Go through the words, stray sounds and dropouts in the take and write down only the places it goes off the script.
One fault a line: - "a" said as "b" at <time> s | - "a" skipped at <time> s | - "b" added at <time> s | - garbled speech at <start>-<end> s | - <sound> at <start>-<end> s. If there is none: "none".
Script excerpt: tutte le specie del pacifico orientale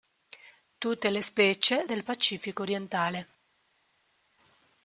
none